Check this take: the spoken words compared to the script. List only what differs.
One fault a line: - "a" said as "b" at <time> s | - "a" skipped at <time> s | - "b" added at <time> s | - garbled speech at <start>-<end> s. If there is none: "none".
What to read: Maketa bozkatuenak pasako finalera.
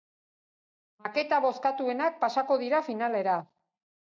- "dira" added at 2.6 s